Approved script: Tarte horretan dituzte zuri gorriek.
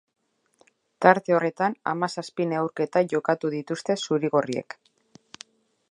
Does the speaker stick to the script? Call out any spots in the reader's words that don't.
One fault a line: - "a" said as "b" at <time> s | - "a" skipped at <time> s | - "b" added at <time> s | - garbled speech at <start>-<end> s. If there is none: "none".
- "hamazazpi neurketa jokatu" added at 1.9 s